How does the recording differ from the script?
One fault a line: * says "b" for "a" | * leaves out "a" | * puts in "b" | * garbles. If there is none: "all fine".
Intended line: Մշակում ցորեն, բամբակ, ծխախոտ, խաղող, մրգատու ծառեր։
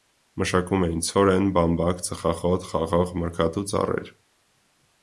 * puts in "էին"